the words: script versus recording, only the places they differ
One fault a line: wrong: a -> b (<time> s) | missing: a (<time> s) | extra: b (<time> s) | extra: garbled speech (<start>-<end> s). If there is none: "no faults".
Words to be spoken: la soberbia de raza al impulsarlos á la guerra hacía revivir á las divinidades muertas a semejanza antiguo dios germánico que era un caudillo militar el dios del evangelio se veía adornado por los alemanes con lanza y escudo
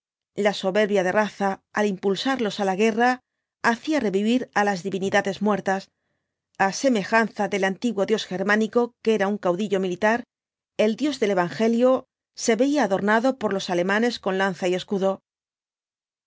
extra: del (7.5 s)